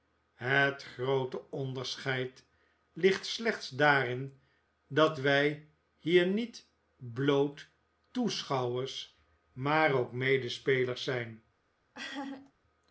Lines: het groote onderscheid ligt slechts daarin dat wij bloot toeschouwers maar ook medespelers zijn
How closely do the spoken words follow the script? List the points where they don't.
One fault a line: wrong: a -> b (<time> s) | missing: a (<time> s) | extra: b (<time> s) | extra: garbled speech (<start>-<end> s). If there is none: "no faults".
extra: hier niet (6.0 s)